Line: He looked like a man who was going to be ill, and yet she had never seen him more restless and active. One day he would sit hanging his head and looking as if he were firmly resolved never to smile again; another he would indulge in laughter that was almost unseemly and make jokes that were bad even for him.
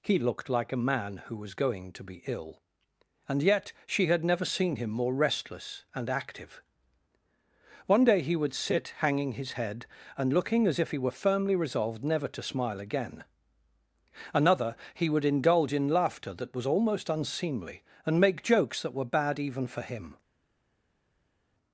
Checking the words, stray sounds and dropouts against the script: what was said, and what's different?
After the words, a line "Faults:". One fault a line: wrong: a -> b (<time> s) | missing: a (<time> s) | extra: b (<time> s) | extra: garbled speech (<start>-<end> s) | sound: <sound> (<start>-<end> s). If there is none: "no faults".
He looked like a man who was going to be ill, and yet she had never seen him more restless and active. One day he would sit hanging his head and looking as if he were firmly resolved never to smile again; another he would indulge in laughter that was almost unseemly and make jokes that were bad even for him.
Faults:
no faults